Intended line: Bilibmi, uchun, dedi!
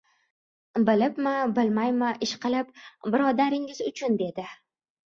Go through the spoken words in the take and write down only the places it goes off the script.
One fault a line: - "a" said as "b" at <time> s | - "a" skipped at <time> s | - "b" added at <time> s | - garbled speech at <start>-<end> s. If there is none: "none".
- "bilmaymi ishqilib birodaringiz" added at 1.6 s